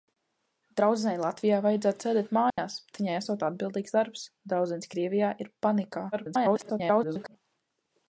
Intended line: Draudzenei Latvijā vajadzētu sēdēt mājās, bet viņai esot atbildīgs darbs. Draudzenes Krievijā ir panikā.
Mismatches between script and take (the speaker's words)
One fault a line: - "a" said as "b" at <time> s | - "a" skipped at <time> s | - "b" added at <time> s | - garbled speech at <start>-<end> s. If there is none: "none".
- garbled speech at 6.1-7.4 s